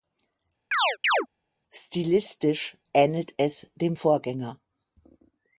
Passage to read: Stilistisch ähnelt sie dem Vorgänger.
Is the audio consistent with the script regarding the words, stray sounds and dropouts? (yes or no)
no